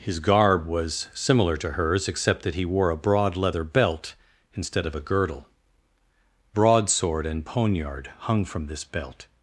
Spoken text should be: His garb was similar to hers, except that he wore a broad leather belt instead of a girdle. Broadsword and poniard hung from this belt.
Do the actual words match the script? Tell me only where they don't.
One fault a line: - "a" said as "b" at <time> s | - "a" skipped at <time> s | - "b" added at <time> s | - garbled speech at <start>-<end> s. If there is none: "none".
none